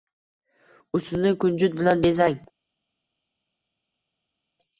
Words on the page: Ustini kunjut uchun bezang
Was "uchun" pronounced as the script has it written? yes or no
no